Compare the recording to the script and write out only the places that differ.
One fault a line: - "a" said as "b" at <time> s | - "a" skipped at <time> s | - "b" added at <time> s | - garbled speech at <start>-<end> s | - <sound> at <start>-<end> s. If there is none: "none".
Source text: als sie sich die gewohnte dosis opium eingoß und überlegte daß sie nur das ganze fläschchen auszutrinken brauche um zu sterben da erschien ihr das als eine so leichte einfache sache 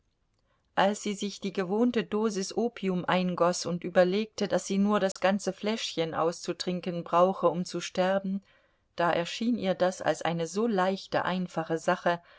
- dropout at 5.1-5.2 s